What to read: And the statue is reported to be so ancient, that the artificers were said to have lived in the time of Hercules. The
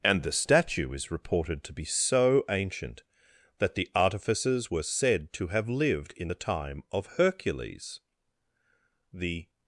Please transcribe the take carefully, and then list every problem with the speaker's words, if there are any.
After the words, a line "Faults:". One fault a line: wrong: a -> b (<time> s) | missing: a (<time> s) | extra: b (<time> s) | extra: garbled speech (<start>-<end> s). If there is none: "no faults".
And the statue is reported to be so ancient, that the artificers were said to have lived in the time of Hercules. The
Faults:
no faults